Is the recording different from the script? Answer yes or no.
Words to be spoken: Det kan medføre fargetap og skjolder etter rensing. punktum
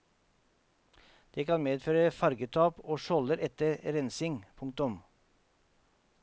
no